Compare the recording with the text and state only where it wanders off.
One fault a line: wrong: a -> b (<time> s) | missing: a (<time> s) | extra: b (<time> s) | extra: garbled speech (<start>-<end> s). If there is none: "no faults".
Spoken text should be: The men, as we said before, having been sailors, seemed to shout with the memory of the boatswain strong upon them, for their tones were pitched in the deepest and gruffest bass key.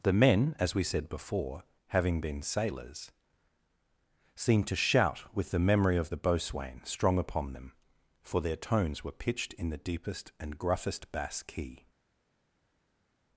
no faults